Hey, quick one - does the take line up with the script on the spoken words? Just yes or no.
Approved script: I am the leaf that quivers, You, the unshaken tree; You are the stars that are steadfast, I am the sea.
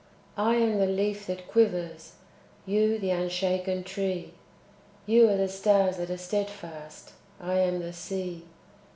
yes